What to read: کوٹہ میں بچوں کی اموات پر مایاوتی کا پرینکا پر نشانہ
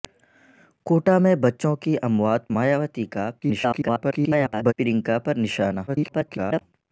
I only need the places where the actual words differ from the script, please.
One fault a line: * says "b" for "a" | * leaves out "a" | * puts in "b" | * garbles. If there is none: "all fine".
* leaves out "پر"
* garbles
* garbles